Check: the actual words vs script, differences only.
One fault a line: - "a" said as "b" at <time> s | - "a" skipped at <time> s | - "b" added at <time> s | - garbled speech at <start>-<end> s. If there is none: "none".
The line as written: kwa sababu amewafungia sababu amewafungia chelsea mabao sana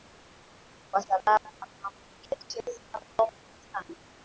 - "sababu amewafungia" skipped at 2.4 s
- "mengi" added at 3.4 s